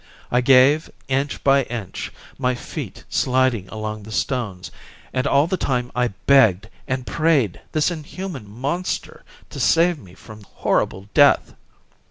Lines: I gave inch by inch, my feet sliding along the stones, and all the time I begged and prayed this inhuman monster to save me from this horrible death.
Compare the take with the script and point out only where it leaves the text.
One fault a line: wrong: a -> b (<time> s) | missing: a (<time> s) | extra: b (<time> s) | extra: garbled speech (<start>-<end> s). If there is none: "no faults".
missing: this (10.4 s)